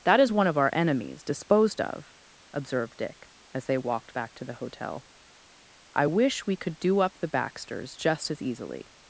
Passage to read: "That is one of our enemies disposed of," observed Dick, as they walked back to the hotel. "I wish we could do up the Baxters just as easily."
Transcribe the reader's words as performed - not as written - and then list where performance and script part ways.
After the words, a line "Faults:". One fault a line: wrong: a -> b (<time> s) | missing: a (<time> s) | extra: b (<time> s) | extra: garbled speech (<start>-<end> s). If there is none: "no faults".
"That is one of our enemies disposed of," observed Dick, as they walked back to the hotel. "I wish we could do up the Baxters just as easily."
Faults:
no faults